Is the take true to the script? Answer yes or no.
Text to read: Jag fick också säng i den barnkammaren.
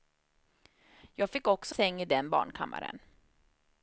yes